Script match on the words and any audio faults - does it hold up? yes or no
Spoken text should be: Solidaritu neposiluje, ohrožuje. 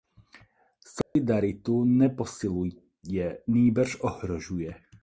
no